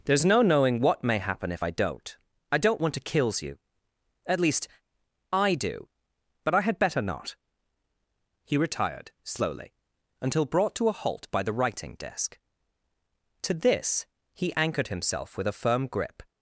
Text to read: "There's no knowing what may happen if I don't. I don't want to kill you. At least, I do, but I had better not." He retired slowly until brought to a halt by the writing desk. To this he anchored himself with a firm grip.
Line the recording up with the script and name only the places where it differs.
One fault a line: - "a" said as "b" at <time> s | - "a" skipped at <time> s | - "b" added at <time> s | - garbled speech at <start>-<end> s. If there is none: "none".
- "kill" said as "kills" at 3.0 s